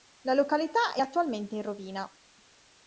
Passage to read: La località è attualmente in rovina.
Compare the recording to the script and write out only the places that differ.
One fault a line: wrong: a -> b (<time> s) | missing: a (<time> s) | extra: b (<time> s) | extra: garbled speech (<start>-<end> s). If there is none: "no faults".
no faults